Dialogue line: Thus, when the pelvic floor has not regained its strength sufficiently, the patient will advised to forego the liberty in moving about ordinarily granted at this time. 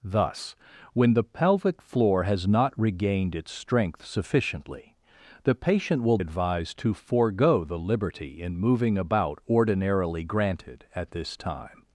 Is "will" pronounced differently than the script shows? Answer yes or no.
no